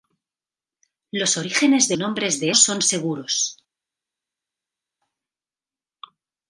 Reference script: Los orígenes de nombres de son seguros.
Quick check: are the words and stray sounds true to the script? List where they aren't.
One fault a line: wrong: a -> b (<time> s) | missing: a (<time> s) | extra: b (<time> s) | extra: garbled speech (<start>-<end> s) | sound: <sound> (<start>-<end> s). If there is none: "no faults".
no faults